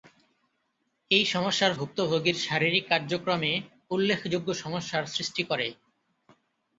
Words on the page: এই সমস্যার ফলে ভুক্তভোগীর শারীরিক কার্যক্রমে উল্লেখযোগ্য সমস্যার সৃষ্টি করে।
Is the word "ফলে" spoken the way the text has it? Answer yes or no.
no